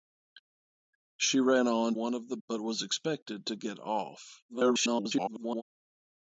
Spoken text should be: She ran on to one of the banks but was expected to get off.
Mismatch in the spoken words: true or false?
true